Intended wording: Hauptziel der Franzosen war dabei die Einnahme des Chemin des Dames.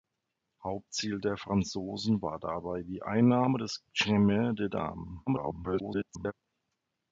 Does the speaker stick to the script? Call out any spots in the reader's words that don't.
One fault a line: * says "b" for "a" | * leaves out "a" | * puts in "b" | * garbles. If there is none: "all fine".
* garbles